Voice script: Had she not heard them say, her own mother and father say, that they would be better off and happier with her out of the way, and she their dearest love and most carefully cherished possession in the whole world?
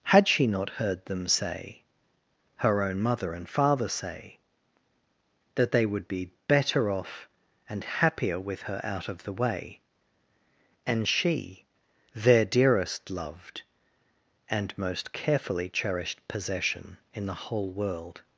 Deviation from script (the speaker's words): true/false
true